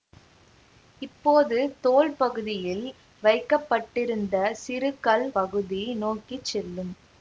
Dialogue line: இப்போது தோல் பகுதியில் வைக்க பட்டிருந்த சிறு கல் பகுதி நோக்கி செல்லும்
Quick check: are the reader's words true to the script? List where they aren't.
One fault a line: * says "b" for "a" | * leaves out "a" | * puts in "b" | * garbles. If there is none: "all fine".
all fine